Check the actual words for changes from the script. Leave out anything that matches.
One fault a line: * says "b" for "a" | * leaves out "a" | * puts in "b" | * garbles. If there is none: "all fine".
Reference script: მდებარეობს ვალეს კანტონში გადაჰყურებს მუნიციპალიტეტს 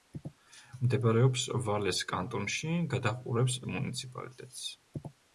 all fine